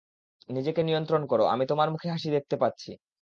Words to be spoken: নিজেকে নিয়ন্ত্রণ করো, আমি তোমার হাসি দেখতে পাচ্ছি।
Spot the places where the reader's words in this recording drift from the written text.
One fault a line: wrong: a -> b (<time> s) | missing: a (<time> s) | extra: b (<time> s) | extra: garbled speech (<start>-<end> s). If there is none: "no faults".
extra: মুখে (1.9 s)